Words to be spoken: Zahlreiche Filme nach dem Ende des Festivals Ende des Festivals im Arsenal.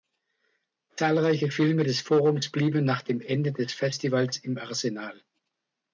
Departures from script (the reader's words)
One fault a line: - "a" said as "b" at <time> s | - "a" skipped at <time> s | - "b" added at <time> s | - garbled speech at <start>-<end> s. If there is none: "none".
- "nach dem Ende des Festivals" said as "des Forums blieben nach dem" at 1.8 s